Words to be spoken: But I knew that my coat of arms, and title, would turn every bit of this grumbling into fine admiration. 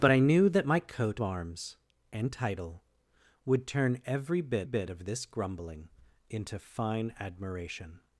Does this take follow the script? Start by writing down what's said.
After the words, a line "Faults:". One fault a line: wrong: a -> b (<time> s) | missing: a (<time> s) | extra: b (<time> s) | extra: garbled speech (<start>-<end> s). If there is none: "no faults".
But I knew that my coat arms, and title, would turn every bit bit of this grumbling into fine admiration.
Faults:
missing: of (1.2 s)
extra: bit (4.6 s)